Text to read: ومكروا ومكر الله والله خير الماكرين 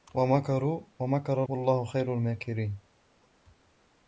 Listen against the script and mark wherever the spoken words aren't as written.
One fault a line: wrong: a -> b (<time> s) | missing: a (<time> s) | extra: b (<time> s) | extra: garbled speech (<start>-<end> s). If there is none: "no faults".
missing: الله (1.4 s)